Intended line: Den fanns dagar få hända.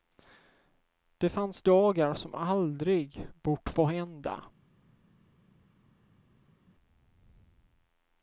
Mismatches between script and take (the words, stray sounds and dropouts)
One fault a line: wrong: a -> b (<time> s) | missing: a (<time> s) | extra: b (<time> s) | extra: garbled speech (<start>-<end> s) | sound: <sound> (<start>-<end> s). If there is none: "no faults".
wrong: Den -> Det (1.2 s)
extra: som aldrig bort (2.1 s)